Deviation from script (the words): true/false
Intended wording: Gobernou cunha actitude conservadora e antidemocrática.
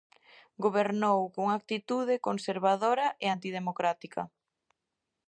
false